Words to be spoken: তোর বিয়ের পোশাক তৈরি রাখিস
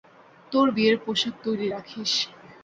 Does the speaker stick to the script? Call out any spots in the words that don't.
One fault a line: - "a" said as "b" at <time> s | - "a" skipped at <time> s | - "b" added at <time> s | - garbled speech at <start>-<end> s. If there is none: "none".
none